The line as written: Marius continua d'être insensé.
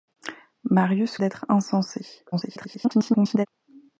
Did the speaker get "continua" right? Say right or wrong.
wrong